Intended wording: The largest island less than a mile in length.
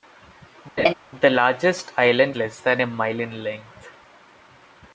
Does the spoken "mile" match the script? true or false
true